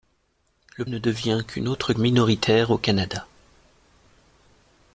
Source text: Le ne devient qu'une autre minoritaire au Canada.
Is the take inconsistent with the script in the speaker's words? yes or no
no